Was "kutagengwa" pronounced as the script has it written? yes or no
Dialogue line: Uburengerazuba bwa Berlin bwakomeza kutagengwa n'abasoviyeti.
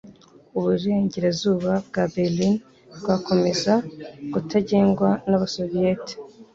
yes